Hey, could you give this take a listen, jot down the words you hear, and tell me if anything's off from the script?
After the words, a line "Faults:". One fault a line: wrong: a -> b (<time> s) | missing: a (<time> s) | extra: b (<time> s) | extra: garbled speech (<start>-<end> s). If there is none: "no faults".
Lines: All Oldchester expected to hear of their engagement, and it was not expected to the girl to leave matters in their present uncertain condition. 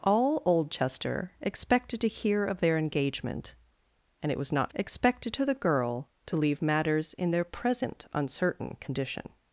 All Oldchester expected to hear of their engagement, and it was not expected to the girl to leave matters in their present uncertain condition.
Faults:
no faults